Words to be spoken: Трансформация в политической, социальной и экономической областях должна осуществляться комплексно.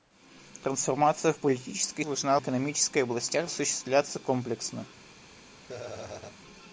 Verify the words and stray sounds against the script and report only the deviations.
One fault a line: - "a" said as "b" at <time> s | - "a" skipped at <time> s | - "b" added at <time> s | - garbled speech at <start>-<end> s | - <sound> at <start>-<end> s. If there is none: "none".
- "социальной" said as "должна" at 2.0 s
- "должна" skipped at 3.5 s
- laugh at 5.6-6.4 s